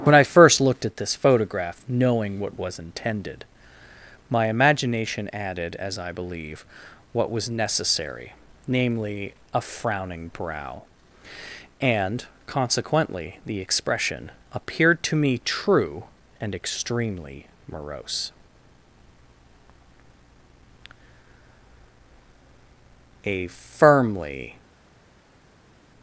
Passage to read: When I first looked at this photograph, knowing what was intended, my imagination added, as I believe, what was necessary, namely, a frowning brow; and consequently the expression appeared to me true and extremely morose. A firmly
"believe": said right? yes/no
yes